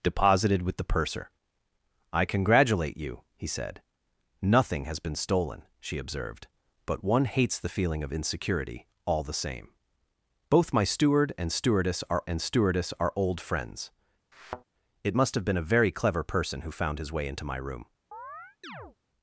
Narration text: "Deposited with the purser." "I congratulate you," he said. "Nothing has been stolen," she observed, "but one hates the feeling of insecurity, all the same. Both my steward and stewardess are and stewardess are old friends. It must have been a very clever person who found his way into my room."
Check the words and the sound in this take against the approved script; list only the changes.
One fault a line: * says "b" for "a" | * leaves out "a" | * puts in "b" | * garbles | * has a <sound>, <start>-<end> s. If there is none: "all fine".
* has a thud, 14.3-14.6 s
* has a chirp, 18.1-19.0 s